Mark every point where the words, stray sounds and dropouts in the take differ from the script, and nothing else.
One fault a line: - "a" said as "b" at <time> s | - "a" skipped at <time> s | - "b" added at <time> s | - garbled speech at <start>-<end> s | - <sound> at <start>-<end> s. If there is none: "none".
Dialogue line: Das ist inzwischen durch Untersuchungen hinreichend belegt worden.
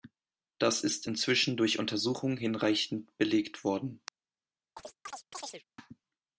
- chirp at 4.8-5.6 s